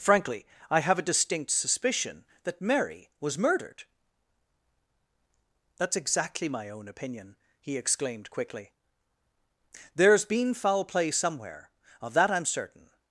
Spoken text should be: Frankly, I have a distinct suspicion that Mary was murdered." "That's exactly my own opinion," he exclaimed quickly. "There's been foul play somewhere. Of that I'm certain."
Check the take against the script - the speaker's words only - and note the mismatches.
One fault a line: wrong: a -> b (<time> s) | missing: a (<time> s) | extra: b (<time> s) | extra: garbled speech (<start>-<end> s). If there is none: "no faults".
no faults